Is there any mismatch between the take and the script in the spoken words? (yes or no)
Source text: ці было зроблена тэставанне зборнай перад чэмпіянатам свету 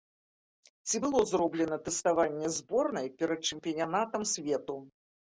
no